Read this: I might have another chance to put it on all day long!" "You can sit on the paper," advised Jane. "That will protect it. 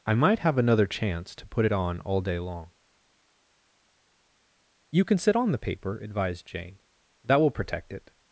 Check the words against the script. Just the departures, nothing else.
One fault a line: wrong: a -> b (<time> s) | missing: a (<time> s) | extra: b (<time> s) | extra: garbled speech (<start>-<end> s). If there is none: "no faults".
no faults